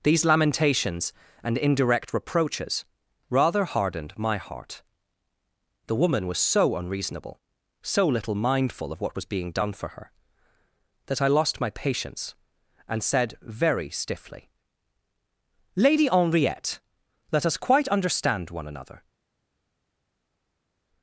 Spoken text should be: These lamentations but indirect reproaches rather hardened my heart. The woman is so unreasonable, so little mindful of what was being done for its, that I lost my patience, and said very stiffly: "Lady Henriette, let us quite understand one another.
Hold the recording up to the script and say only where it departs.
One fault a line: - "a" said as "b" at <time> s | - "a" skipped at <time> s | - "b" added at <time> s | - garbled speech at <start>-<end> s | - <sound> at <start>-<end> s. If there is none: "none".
- "but" said as "and" at 1.4 s
- "is" said as "was" at 6.3 s
- "its" said as "her" at 9.9 s